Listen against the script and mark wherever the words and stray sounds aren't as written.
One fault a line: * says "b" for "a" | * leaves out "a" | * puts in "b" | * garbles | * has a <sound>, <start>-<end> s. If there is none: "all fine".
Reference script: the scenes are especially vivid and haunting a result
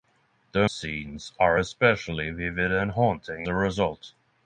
all fine